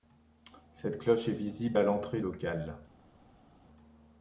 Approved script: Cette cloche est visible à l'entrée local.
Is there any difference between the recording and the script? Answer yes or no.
no